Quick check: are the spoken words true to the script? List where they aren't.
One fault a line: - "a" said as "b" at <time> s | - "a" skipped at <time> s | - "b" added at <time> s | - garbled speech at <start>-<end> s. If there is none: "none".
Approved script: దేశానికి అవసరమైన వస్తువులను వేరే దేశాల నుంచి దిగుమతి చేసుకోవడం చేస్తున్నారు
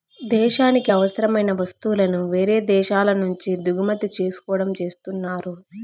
none